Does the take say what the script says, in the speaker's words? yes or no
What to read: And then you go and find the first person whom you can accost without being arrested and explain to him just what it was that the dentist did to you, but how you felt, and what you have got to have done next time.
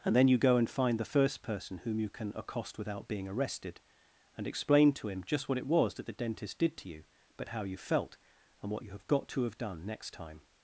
yes